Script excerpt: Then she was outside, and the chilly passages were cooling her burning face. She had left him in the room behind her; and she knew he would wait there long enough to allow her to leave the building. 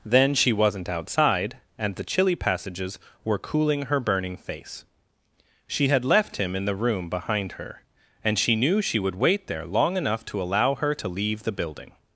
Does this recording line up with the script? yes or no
no